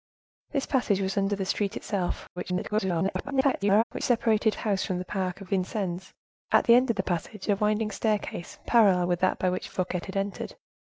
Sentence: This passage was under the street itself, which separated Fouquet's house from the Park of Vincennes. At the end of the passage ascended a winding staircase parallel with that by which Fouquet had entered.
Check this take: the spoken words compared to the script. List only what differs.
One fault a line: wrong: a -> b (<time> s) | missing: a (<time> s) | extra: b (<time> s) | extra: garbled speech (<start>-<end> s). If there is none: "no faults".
extra: garbled speech (2.4-3.8 s)
missing: Fouquet's (4.5 s)
missing: ascended (7.5 s)